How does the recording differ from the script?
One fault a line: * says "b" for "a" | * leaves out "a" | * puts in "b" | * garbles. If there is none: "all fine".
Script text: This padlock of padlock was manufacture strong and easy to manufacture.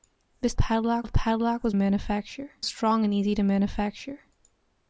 all fine